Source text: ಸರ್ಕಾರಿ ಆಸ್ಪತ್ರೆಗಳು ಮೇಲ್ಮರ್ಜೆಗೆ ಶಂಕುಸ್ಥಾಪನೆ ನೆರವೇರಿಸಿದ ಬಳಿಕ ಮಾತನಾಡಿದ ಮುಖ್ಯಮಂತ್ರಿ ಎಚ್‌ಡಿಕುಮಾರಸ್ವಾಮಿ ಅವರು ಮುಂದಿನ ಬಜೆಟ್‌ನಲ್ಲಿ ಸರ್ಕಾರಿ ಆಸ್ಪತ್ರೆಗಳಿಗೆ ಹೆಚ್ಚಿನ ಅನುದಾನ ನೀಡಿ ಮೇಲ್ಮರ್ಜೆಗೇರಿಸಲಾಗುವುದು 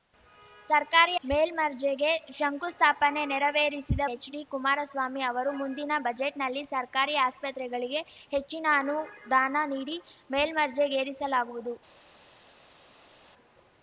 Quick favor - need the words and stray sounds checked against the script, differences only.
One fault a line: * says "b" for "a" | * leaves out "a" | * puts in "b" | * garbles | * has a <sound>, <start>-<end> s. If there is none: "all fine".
* leaves out "ಆಸ್ಪತ್ರೆಗಳು"
* leaves out "ಬಳಿಕ ಮಾತನಾಡಿದ ಮುಖ್ಯಮಂತ್ರಿ"